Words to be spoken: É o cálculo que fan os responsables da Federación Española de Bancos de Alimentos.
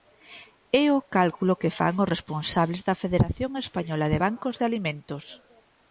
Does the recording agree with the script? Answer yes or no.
yes